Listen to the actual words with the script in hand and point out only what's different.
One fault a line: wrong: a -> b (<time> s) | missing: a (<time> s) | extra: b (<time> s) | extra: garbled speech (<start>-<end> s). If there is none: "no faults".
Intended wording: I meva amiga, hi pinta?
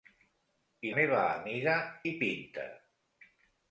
no faults